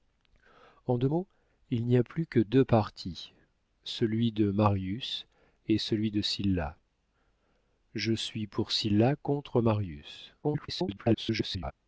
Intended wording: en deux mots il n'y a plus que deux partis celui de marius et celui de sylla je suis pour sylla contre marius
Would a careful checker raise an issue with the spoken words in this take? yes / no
yes